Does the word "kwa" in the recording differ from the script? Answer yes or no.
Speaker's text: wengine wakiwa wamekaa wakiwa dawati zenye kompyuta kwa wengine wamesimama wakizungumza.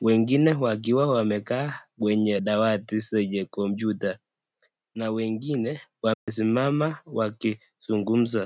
yes